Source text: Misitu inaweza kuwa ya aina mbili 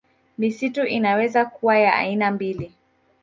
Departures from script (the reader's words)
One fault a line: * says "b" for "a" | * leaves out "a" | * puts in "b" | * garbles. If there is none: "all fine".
all fine